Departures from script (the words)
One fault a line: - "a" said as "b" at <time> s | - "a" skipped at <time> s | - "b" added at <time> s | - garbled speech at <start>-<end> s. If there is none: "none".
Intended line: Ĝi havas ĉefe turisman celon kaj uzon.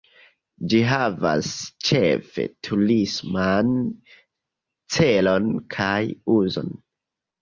none